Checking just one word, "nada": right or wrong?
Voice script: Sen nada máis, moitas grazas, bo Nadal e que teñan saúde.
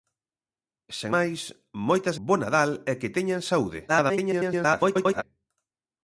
wrong